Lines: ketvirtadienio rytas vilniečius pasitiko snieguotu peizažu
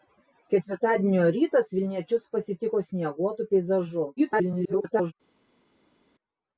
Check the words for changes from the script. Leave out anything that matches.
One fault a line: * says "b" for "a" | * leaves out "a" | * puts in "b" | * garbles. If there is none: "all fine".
* garbles